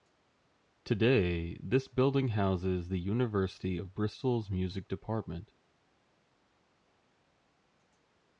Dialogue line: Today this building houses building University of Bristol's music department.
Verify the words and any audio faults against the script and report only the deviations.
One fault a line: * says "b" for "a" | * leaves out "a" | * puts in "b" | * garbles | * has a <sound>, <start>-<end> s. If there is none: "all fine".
* says "the" for "building"